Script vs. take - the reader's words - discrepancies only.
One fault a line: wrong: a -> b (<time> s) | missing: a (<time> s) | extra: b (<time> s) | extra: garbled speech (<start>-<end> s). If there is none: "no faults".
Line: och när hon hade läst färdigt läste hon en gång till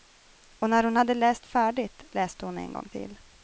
no faults